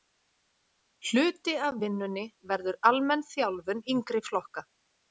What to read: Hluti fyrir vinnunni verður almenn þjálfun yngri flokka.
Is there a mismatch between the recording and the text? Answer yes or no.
yes